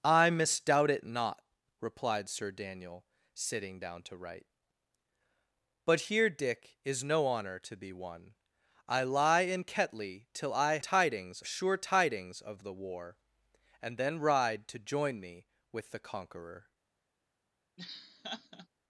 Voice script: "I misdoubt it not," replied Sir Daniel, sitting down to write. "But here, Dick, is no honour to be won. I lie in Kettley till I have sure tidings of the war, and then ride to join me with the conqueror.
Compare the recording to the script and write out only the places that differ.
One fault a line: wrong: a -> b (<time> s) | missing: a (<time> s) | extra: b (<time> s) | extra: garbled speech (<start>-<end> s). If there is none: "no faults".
wrong: have -> tidings (10.8 s)